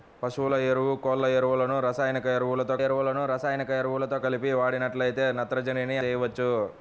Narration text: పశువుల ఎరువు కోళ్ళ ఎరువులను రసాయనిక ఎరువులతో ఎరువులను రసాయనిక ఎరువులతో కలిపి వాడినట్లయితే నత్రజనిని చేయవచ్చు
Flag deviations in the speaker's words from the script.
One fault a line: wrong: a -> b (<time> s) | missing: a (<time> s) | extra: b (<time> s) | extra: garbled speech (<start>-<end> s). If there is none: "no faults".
no faults